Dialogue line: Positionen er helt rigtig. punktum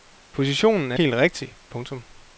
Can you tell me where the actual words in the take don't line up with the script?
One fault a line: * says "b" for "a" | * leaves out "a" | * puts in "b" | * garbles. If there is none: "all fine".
all fine